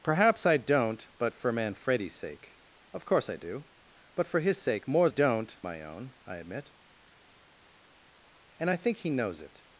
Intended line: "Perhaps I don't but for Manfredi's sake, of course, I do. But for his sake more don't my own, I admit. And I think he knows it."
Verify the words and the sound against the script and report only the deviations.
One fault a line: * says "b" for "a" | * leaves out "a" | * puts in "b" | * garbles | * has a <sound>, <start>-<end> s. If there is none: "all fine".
all fine